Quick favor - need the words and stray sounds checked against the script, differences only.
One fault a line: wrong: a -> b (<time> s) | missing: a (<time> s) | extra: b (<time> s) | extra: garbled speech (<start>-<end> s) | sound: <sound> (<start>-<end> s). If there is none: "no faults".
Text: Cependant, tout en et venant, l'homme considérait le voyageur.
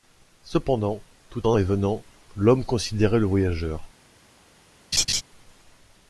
sound: laugh (4.9-5.2 s)